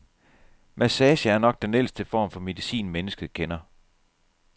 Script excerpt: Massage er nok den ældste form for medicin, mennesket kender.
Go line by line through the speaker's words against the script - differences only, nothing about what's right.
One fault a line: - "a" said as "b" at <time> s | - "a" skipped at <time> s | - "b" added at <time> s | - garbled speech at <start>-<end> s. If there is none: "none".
none